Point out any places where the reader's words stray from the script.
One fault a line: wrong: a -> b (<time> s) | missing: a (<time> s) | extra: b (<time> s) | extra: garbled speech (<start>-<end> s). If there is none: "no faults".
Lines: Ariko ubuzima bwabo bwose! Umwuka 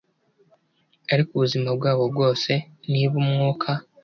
extra: Niba (2.9 s)